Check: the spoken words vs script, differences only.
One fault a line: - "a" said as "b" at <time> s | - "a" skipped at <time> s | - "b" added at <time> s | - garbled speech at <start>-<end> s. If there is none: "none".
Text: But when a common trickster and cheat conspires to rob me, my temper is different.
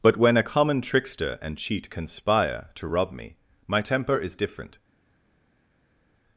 - "conspires" said as "conspire" at 1.9 s